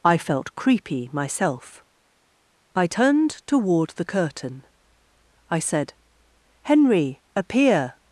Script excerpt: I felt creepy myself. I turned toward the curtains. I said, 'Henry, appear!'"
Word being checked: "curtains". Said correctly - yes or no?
no